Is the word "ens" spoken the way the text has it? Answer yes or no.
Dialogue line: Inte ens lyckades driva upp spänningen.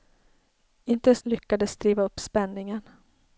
yes